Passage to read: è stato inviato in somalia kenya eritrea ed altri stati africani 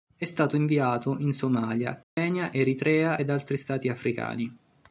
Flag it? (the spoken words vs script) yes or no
no